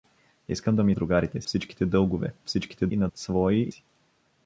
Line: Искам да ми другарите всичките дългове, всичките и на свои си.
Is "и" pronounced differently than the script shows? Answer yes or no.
no